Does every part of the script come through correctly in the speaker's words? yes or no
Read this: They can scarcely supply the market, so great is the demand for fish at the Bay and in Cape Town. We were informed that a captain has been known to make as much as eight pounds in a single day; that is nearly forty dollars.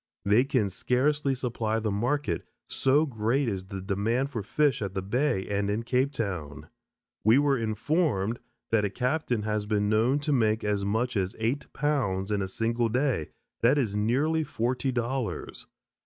yes